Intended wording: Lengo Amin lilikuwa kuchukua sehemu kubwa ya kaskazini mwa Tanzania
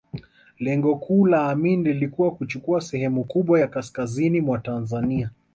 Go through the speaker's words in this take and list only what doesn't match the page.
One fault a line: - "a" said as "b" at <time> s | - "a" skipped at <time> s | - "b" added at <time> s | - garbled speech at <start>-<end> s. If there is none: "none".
- "kuu la" added at 0.9 s